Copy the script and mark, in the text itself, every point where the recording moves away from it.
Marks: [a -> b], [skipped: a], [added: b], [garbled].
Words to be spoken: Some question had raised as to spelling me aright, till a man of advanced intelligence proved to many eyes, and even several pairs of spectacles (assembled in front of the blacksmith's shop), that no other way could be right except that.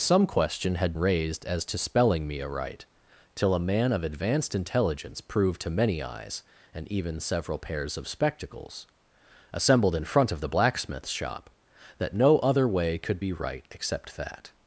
Some question had raised as to spelling me aright, till a man of advanced intelligence proved to many eyes, and even several pairs of spectacles (assembled in front of the blacksmith's shop), that no other way could be right except that.